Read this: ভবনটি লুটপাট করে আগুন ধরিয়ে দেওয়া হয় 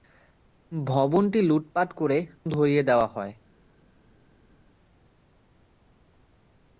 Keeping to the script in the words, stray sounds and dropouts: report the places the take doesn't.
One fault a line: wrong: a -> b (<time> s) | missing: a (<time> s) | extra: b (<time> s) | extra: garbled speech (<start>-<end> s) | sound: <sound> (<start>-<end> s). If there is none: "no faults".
missing: আগুন (2.2 s)